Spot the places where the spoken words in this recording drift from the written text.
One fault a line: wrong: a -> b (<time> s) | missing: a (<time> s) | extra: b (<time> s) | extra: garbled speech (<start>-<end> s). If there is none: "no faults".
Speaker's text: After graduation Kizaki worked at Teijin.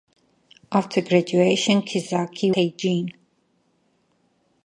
missing: worked at (2.5 s)